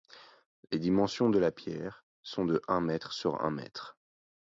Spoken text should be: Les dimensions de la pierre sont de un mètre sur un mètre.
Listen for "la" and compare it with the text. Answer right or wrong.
right